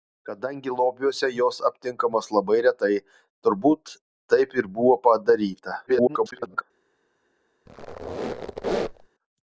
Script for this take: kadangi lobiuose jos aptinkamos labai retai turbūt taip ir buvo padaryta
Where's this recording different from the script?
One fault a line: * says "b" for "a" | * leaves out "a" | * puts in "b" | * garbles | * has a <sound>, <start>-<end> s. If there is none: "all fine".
* garbles
* has a squeak, 7.7-9.1 s